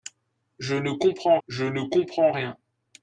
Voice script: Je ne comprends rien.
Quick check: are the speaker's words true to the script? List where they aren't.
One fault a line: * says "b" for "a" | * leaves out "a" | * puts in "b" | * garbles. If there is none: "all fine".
* puts in "je ne comprends"